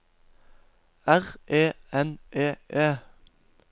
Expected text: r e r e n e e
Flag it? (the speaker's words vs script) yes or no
yes